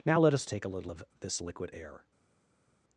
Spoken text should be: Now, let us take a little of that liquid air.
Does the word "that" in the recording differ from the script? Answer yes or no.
yes